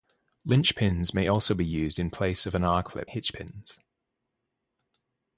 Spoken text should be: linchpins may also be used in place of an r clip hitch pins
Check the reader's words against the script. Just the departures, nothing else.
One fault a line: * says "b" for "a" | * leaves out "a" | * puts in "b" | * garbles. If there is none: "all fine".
all fine